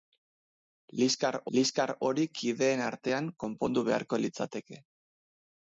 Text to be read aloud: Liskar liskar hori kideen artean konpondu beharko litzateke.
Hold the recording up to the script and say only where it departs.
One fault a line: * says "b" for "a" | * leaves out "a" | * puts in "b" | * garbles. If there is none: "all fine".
all fine